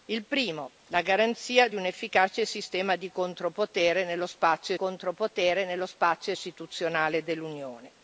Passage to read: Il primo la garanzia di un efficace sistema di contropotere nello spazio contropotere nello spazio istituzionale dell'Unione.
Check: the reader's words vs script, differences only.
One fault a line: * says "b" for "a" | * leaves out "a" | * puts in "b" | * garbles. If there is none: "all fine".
all fine